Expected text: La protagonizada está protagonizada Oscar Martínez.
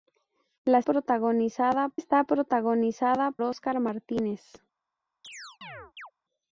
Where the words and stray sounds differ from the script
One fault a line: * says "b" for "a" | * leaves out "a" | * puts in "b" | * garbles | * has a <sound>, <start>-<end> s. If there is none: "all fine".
* has a chirp, 5.2-6.1 s